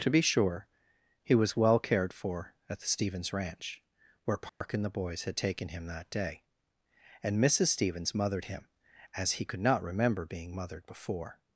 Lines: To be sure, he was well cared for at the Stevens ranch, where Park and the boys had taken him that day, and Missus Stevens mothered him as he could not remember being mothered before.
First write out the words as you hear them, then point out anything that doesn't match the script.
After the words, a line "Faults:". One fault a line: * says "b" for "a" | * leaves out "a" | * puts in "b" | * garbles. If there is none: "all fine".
To be sure, he was well cared for at the Stevens ranch, where Park and the boys had taken him that day, and Missus Stevens mothered him as he could not remember being mothered before.
Faults:
all fine